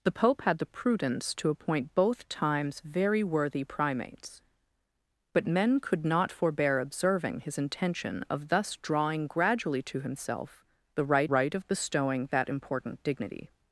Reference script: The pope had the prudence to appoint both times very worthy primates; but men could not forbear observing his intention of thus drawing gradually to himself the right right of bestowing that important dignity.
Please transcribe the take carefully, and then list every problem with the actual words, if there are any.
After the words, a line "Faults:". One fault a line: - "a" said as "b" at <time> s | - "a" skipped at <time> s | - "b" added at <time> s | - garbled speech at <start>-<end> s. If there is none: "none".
The pope had the prudence to appoint both times very worthy primates; but men could not forbear observing his intention of thus drawing gradually to himself the right right of bestowing that important dignity.
Faults:
none